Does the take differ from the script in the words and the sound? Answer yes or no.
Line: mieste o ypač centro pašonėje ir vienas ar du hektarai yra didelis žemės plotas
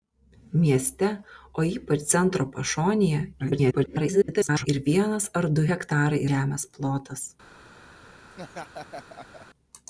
yes